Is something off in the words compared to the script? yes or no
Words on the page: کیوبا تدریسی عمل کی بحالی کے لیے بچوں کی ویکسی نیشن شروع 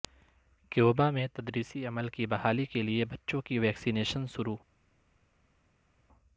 yes